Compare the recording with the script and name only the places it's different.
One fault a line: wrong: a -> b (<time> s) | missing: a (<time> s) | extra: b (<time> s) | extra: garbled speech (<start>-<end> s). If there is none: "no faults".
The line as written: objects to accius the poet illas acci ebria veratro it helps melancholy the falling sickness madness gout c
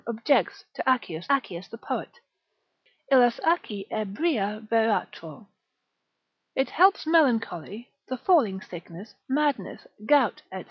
extra: accius (1.3 s)